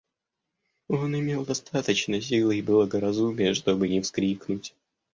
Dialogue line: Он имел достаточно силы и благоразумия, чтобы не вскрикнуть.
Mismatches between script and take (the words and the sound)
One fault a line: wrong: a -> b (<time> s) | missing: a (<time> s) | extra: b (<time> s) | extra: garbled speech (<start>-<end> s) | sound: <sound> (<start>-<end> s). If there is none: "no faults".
no faults